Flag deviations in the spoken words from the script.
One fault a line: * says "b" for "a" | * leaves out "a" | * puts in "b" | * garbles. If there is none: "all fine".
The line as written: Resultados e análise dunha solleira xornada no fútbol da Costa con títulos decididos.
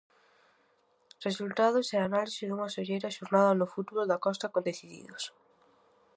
* leaves out "títulos"